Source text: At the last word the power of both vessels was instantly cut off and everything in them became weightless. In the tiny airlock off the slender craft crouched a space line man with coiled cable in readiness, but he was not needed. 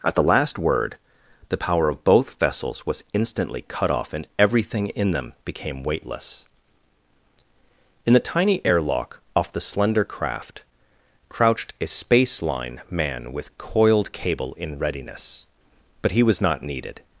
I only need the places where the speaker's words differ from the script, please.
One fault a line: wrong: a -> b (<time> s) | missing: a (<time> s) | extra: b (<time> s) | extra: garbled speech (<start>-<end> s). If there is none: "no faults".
no faults